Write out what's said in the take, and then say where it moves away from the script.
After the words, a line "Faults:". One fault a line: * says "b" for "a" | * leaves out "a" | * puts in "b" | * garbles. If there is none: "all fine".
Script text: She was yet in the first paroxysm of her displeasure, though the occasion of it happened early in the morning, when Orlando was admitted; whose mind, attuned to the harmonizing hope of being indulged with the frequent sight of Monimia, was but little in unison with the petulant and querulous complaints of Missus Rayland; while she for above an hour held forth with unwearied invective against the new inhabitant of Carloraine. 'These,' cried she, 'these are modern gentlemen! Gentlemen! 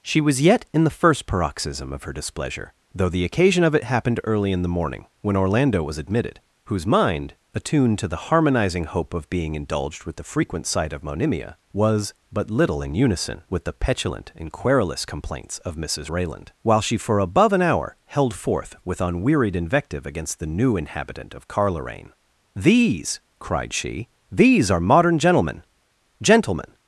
She was yet in the first paroxysm of her displeasure, though the occasion of it happened early in the morning, when Orlando was admitted; whose mind, attuned to the harmonizing hope of being indulged with the frequent sight of Monimia, was but little in unison with the petulant and querulous complaints of Missus Rayland; while she for above an hour held forth with unwearied invective against the new inhabitant of Carloraine. 'These,' cried she, 'these are modern gentlemen! Gentlemen!
Faults:
all fine